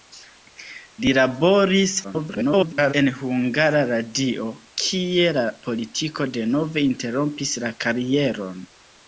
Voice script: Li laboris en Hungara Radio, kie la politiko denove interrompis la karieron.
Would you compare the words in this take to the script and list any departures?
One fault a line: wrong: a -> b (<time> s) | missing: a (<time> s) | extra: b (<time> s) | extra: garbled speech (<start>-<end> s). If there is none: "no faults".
extra: garbled speech (2.0-2.9 s)